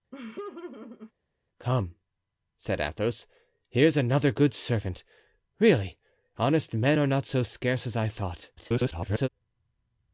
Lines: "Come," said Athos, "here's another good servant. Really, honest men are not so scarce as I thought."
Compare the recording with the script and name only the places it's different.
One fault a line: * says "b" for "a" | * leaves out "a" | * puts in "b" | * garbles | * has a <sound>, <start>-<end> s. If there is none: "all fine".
* has a laugh, 0.1-1.1 s
* garbles